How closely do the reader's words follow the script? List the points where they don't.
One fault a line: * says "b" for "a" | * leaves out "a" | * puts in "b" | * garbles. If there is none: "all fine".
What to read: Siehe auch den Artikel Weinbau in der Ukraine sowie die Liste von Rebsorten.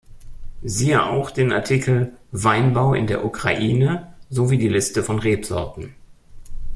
all fine